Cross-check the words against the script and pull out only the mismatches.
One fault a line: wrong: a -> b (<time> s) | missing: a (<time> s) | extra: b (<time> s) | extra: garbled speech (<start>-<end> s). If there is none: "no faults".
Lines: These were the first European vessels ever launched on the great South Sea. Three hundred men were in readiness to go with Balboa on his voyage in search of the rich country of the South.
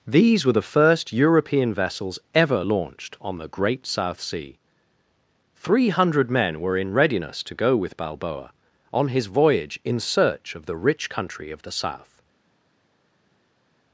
no faults